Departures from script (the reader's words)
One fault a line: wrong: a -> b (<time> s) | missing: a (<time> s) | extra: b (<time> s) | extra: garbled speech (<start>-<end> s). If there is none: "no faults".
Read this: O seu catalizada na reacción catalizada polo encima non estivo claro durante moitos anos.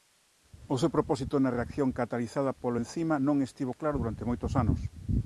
wrong: catalizada -> propósito (0.9 s)